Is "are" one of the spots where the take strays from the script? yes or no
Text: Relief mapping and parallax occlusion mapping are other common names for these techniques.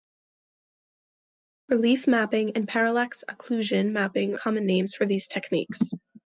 yes